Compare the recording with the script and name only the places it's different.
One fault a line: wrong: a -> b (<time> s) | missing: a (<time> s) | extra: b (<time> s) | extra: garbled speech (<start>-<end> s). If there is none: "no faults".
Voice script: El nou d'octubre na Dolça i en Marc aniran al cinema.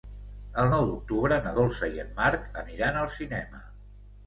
no faults